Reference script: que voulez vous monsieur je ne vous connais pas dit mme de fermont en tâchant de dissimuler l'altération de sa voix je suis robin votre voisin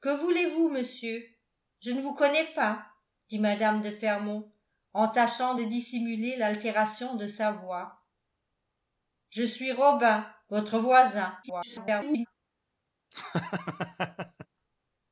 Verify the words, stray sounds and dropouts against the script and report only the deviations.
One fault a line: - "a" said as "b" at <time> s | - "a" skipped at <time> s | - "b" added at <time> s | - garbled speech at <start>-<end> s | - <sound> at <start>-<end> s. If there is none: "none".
- garbled speech at 11.4-12.3 s
- laugh at 13.1-14.5 s